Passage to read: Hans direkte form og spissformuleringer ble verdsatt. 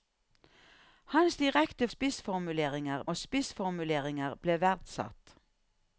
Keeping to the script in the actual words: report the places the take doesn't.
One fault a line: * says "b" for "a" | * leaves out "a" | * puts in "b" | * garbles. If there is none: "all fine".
* says "spissformuleringer" for "form"